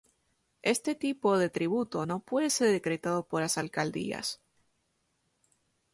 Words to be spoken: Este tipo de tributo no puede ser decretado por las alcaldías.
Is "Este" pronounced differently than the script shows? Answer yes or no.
no